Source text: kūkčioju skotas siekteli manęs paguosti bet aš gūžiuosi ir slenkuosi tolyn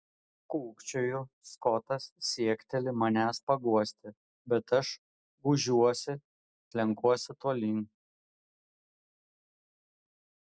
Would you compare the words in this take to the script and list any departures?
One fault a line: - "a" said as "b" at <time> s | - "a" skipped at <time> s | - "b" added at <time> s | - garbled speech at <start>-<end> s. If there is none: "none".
- "ir" skipped at 6.2 s